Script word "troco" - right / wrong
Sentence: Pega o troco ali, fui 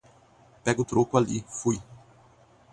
right